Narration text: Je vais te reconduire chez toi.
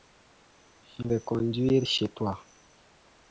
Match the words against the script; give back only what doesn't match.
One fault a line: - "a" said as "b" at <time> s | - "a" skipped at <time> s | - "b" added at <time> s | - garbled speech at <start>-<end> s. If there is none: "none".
- "vais te" skipped at 1.1 s